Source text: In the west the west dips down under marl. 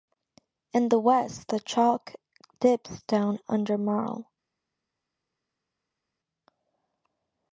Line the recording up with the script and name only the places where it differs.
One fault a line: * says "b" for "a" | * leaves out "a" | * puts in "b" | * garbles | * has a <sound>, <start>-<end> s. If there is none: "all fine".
* says "chalk" for "west"